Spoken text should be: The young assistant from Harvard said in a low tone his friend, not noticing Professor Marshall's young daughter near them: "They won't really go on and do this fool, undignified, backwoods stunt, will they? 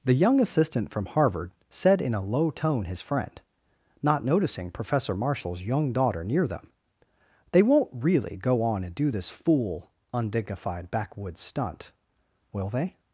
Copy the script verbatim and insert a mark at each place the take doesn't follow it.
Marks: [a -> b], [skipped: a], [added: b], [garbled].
The young assistant from Harvard said in a low tone his friend, not noticing Professor Marshall's young daughter near them: "They won't really go on and do this fool, undignified, backwoods stunt, will they?